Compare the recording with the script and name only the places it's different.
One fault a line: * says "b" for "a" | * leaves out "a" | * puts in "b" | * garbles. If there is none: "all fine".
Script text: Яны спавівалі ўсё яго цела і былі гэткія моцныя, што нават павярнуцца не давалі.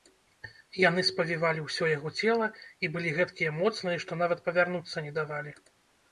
all fine